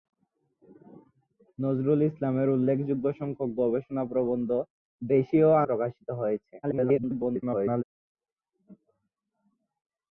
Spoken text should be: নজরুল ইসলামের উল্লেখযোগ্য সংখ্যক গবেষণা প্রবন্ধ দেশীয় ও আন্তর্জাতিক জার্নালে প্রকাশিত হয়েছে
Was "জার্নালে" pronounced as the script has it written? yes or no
no